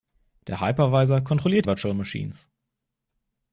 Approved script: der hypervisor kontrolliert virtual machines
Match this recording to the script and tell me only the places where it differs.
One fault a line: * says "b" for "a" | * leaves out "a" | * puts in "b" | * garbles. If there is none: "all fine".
all fine